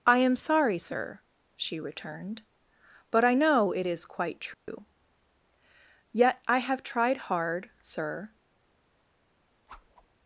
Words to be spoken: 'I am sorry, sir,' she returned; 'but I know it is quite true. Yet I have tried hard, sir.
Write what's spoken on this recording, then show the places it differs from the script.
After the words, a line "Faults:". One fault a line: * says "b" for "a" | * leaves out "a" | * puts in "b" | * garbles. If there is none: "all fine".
'I am sorry, sir,' she returned; 'but I know it is quite true. Yet I have tried hard, sir.
Faults:
all fine